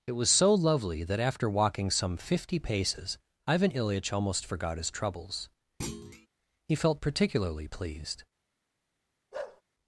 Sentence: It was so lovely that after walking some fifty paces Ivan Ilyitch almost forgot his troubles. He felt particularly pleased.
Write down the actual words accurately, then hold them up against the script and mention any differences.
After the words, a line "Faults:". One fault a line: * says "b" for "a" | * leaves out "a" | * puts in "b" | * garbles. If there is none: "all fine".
It was so lovely that after walking some fifty paces Ivan Ilyitch almost forgot his troubles. He felt particularly pleased.
Faults:
all fine